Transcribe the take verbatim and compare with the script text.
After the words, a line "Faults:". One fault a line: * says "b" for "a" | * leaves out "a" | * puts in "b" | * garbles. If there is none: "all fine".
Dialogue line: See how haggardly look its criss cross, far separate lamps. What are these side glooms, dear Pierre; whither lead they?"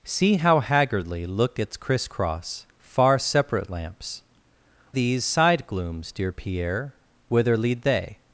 See how haggardly look its criss cross, far separate lamps. These side glooms, dear Pierre; whither lead they?"
Faults:
* leaves out "What are"